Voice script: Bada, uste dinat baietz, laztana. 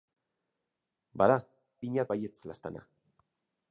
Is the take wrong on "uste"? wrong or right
wrong